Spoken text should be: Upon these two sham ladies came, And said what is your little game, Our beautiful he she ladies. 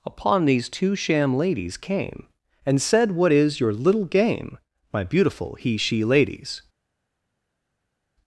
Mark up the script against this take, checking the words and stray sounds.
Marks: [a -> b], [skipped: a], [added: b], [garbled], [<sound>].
Upon these two sham ladies came, And said what is your little game, [Our -> My] beautiful he she ladies.